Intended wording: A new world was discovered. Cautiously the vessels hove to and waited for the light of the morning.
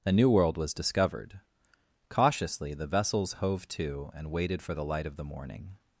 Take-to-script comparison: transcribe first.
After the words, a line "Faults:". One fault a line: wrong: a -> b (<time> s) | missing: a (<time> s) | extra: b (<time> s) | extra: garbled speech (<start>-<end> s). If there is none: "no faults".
A new world was discovered. Cautiously the vessels hove to and waited for the light of the morning.
Faults:
no faults